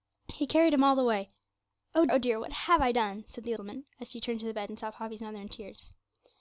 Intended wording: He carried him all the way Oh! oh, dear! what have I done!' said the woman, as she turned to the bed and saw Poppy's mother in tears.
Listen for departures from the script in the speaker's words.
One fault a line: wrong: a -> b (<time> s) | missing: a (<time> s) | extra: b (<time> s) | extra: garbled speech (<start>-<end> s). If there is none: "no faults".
no faults